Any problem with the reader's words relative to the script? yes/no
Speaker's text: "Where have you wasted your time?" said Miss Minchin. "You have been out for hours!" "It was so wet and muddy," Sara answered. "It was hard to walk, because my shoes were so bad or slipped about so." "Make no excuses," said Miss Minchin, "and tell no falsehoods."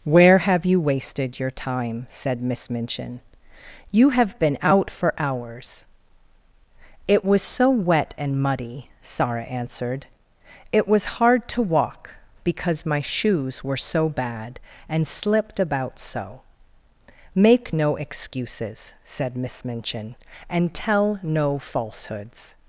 yes